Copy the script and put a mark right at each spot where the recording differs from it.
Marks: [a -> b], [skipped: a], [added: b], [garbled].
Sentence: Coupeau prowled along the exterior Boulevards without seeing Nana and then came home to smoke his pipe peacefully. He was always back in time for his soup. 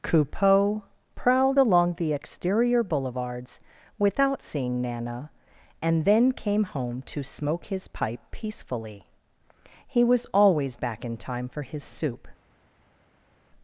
Coupeau prowled along the exterior Boulevards without seeing Nana and then came home to smoke his pipe peacefully. He was always back in time for his soup.